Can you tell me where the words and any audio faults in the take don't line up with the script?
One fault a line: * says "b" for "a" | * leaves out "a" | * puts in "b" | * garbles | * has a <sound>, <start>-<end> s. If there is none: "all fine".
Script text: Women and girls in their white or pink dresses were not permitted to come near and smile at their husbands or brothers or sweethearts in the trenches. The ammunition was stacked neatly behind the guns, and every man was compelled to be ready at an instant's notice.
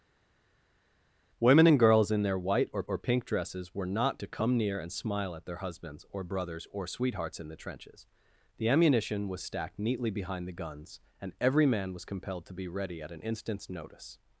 * puts in "or"
* leaves out "permitted"